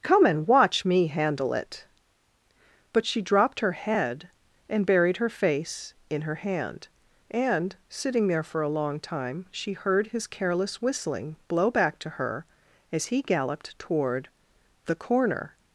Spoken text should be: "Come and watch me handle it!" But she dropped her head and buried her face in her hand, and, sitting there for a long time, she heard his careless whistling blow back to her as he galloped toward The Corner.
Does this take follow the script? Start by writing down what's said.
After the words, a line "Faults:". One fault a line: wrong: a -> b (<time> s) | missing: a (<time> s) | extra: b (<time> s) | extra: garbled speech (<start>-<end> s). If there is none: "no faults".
"Come and watch me handle it!" But she dropped her head and buried her face in her hand, and, sitting there for a long time, she heard his careless whistling blow back to her as he galloped toward The Corner.
Faults:
no faults